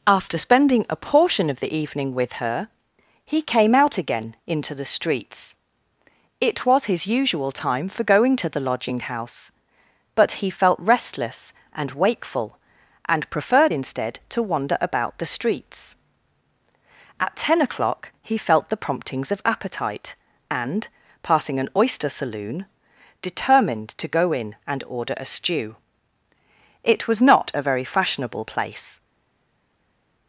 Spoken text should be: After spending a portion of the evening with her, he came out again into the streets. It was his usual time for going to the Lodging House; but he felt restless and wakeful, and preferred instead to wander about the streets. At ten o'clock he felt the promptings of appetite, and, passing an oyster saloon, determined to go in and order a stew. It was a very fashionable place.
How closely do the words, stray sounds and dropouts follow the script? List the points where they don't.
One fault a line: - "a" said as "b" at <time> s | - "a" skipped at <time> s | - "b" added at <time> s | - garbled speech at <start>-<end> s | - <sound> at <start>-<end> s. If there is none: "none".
- "not" added at 27.2 s